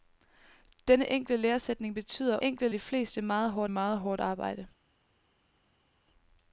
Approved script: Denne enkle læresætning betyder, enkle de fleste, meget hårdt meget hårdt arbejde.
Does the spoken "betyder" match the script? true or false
true